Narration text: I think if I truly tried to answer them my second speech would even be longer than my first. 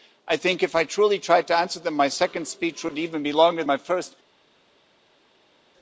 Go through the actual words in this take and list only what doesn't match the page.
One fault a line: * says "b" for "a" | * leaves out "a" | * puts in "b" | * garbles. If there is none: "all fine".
* leaves out "than"